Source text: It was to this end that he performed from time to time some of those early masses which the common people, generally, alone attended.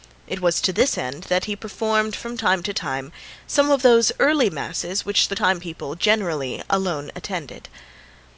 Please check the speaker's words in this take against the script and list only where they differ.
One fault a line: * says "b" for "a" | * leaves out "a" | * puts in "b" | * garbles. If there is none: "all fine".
* says "time" for "common"